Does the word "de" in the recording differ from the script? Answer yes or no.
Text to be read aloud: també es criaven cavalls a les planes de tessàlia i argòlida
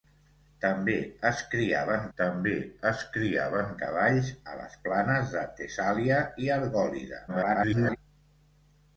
no